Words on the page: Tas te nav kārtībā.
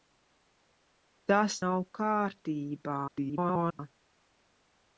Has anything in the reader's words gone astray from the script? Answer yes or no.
yes